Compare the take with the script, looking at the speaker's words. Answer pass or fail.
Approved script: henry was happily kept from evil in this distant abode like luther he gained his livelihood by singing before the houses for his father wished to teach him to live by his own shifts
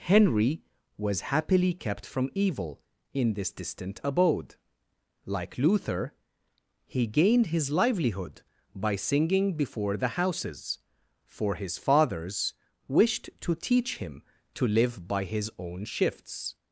fail